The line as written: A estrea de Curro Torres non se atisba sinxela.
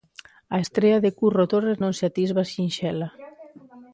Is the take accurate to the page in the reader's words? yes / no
yes